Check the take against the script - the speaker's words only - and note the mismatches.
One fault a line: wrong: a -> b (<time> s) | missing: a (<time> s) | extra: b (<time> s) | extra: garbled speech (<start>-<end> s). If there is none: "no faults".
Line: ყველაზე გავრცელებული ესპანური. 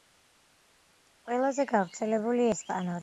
no faults